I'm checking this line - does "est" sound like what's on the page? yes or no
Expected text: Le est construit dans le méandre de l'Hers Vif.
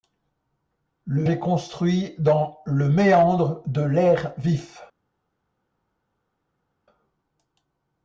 yes